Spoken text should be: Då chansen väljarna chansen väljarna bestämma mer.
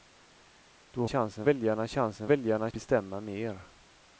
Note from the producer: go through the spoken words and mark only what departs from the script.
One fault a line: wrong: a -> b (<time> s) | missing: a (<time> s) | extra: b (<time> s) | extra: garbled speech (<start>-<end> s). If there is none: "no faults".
no faults